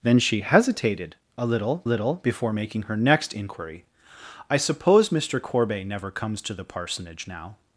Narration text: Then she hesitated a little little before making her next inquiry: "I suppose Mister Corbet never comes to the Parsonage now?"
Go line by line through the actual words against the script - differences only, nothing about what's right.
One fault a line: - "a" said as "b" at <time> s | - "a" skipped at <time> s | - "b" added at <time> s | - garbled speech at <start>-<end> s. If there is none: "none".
none